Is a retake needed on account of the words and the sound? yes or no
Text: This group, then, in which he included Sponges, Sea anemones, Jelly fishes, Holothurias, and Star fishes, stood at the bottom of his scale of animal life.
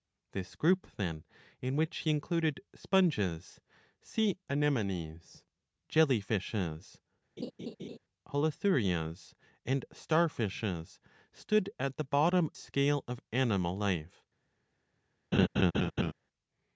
yes